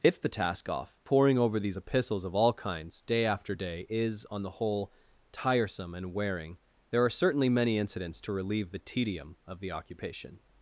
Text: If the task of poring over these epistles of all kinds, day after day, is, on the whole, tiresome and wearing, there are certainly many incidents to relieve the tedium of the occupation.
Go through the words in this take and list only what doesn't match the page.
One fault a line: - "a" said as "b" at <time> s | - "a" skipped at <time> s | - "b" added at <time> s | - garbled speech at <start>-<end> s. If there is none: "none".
- "of" said as "off" at 0.7 s